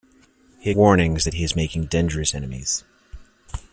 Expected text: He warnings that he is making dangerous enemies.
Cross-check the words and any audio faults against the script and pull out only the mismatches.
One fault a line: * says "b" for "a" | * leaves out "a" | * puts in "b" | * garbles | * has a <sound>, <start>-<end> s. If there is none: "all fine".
all fine